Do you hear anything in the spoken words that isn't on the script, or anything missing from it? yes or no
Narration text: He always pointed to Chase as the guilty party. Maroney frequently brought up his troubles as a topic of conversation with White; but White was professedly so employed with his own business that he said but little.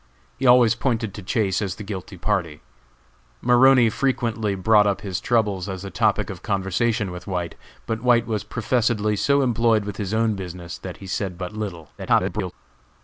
yes